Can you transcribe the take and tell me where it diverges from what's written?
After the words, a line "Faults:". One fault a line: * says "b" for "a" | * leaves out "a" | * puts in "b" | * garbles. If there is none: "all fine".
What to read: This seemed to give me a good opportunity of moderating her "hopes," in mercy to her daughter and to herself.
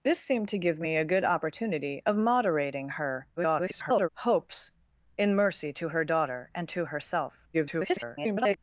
This seemed to give me a good opportunity of moderating her [garbled] "hopes," in mercy to her daughter and to herself. [garbled]
Faults:
* garbles
* garbles